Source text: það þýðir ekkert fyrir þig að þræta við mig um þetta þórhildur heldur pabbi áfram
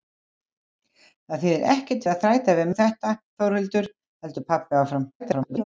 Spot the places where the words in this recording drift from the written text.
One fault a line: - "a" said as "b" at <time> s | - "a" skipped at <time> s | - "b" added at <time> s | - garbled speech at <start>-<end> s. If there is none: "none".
- "fyrir" skipped at 2.1 s
- "mig" skipped at 2.7 s
- garbled speech at 5.2-5.6 s